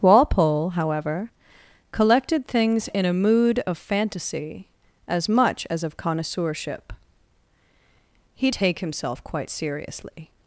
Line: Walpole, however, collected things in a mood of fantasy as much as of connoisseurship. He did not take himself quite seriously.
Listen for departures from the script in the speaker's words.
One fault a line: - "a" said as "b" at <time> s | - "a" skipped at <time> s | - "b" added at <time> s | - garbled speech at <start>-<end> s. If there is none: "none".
- "did not" skipped at 8.5 s